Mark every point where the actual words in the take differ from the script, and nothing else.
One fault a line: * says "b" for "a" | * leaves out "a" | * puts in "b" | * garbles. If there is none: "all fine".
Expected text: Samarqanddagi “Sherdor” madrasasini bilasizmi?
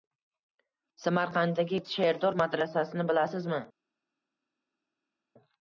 all fine